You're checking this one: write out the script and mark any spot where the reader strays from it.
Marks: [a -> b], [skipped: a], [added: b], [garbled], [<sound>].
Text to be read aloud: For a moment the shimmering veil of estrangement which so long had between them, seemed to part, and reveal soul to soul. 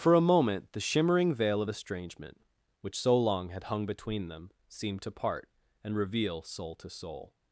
For a moment the shimmering veil of estrangement which so long had [added: hung] between them, seemed to part, and reveal soul to soul.